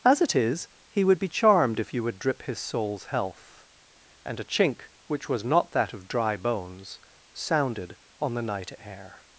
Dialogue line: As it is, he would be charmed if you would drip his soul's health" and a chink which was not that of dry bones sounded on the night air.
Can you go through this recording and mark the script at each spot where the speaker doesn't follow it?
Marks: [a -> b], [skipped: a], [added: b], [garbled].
As it is, he would be charmed if you would drip his soul's health" and a chink which was not that of dry bones sounded on the night air.